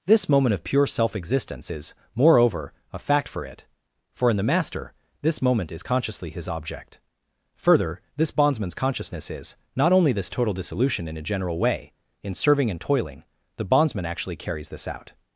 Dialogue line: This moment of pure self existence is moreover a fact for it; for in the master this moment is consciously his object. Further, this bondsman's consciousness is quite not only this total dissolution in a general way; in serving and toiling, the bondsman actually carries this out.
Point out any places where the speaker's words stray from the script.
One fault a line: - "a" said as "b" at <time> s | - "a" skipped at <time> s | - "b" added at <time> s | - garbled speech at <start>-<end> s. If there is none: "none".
- "quite" skipped at 9.5 s